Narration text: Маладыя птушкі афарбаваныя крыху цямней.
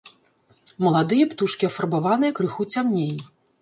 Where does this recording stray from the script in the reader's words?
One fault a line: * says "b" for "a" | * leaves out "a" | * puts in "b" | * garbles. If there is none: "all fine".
all fine